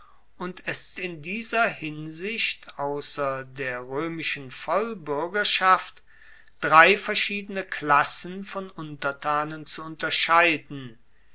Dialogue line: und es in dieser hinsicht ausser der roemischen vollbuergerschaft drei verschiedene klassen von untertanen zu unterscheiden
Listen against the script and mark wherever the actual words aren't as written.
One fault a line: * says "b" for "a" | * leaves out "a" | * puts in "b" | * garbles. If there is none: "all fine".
all fine